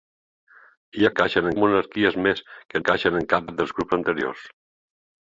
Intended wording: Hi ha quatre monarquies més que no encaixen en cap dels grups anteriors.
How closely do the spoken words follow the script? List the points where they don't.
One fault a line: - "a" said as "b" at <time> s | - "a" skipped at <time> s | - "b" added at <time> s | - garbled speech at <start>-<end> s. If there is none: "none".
- "quatre" said as "encaixen" at 1.1 s
- "no" skipped at 2.8 s
- "cap" added at 3.5 s